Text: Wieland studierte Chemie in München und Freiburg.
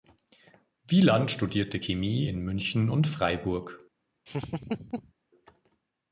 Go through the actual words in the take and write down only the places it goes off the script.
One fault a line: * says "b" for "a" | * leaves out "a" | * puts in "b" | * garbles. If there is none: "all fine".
all fine